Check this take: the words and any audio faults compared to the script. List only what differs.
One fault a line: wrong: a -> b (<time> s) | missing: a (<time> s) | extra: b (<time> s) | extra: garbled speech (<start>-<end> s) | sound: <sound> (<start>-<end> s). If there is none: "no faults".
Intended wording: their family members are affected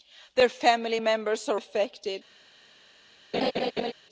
sound: laugh (3.3-3.9 s)